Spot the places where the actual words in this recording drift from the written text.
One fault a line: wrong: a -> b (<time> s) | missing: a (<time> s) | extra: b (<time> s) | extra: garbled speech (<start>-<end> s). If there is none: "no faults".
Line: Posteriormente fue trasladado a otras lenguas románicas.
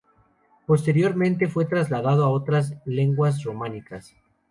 no faults